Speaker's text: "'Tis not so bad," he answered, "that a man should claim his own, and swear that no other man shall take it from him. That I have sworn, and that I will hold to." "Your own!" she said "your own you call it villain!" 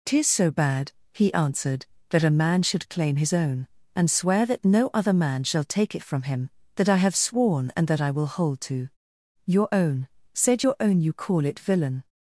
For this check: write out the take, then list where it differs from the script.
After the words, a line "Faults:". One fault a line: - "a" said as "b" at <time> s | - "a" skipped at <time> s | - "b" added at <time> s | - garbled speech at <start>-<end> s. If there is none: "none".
"'Tis so bad," he answered, "that a man should claim his own, and swear that no other man shall take it from him. That I have sworn, and that I will hold to." "Your own!" said "your own you call it villain!"
Faults:
- "not" skipped at 0.3 s
- "she" skipped at 10.1 s